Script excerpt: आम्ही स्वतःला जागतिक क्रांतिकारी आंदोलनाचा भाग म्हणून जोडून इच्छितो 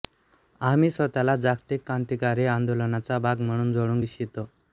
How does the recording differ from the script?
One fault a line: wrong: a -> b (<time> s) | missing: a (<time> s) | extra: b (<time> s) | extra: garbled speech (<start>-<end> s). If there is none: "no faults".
no faults